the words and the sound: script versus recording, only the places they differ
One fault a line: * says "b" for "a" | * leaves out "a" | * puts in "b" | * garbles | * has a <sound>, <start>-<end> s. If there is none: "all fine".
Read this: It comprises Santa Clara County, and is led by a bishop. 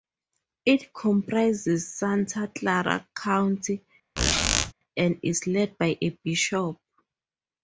* has a squeak, 4.2-4.7 s